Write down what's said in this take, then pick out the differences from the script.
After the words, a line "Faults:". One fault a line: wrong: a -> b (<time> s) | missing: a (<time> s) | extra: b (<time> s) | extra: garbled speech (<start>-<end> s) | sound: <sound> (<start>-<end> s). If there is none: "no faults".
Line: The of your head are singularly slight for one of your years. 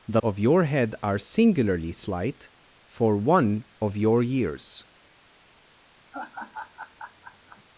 The of your head are singularly slight for one of your years.
Faults:
sound: laugh (6.1-7.6 s)